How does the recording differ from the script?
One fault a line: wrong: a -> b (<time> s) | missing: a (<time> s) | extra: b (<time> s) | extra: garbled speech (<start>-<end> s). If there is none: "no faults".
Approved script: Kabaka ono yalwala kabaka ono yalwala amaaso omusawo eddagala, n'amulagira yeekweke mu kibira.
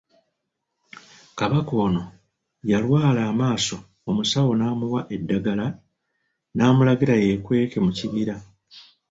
missing: kabaka ono yalwala (3.2 s)
extra: n'amuwa (4.5 s)